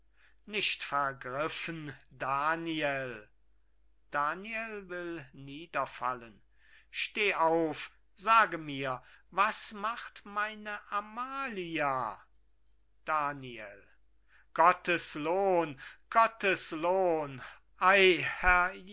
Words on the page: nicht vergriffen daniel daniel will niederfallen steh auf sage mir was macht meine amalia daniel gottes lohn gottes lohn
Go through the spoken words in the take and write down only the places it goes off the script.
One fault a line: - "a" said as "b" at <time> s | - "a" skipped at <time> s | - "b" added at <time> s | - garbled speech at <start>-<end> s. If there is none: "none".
none